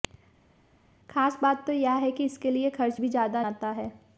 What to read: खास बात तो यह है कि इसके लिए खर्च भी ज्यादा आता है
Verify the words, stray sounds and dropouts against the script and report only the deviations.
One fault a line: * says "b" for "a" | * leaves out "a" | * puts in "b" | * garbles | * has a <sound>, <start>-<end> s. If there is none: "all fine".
all fine